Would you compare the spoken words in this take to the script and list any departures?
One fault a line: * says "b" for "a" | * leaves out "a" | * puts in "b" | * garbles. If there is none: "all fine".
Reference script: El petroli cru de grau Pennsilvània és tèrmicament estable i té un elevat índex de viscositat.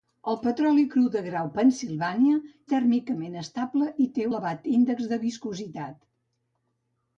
* leaves out "és"
* leaves out "un"